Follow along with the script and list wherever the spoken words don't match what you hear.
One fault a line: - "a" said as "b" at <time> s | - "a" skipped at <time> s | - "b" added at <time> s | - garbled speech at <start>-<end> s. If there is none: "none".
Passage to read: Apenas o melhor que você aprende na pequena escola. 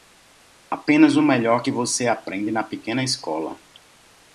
none